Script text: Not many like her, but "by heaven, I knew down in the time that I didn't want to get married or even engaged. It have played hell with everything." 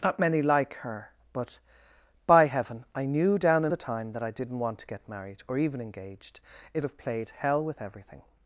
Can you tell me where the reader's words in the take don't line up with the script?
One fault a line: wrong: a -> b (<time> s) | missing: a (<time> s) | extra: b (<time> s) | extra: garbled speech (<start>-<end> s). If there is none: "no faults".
no faults